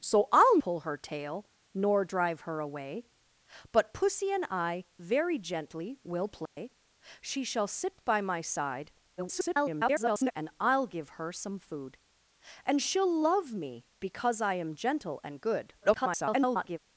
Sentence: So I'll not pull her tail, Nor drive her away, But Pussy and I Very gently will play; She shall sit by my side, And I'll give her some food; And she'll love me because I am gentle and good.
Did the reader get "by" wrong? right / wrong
right